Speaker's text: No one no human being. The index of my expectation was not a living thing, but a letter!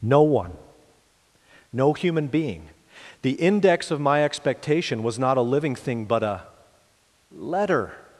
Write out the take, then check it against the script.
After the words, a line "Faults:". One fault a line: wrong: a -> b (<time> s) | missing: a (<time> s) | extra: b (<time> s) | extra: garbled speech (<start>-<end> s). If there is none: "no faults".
No one no human being. The index of my expectation was not a living thing, but a letter!
Faults:
no faults